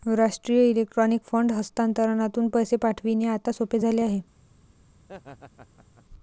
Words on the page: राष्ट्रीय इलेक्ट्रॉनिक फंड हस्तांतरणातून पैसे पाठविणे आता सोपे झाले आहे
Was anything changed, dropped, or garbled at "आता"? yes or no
no